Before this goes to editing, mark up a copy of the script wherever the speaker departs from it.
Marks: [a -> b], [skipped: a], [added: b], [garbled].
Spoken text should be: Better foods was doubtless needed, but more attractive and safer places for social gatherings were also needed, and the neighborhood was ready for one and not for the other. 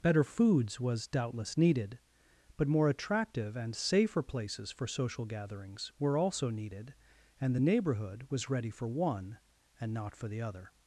Better foods was doubtless needed, but more attractive and safer places for social gatherings were also needed, and the neighborhood was ready for one and not for the other.